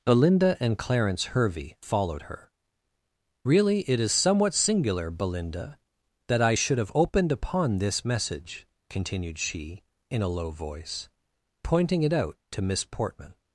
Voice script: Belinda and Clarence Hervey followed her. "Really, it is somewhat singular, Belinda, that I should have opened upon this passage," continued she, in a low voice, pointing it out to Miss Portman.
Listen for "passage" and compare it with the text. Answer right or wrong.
wrong